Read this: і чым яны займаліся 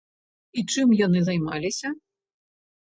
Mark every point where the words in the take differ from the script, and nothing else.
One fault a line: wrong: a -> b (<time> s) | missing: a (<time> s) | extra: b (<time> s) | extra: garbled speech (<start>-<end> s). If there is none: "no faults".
no faults